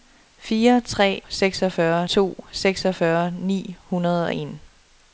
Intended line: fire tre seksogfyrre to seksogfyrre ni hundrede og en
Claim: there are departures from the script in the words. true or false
false